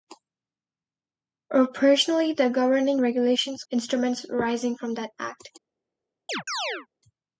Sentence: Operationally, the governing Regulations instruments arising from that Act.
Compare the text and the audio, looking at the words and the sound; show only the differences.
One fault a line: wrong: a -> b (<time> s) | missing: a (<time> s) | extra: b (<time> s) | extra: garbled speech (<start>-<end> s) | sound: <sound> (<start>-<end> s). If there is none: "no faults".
sound: chirp (6.3-6.9 s)